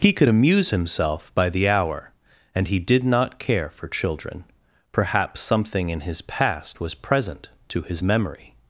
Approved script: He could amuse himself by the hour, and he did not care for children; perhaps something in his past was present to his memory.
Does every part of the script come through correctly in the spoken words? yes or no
yes